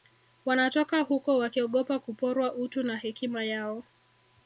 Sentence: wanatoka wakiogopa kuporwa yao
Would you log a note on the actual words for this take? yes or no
yes